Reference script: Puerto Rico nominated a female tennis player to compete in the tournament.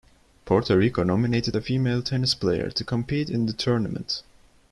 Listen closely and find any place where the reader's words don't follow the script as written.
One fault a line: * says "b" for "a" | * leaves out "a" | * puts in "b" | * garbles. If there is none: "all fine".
all fine